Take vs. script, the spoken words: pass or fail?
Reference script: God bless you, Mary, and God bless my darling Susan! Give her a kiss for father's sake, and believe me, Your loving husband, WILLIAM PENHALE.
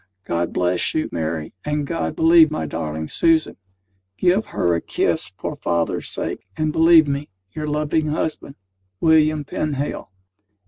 fail